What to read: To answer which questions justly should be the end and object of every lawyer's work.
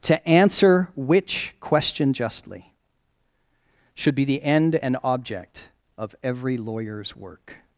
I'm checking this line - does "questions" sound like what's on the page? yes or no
no